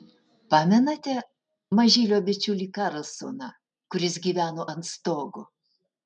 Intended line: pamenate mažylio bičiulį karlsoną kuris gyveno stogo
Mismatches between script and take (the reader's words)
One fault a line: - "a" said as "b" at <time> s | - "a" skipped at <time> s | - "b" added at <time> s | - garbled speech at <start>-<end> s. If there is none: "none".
- "ant" added at 4.7 s